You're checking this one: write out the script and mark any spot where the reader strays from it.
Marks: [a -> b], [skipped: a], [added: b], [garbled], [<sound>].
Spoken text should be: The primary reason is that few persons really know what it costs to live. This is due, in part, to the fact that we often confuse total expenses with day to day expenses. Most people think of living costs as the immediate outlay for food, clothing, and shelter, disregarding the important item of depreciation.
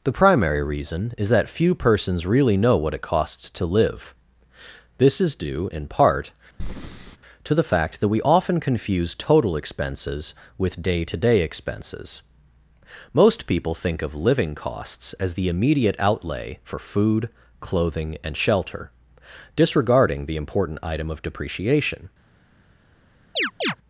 The primary reason is that few persons really know what it costs to live. This is due, in part, [breath] to the fact that we often confuse total expenses with day to day expenses. Most people think of living costs as the immediate outlay for food, clothing, and shelter, disregarding the important item of depreciation. [chirp]